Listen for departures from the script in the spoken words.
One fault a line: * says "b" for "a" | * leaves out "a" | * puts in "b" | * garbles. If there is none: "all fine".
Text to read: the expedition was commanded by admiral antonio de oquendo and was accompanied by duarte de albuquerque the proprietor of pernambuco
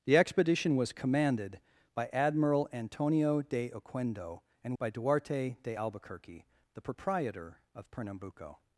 * leaves out "was accompanied"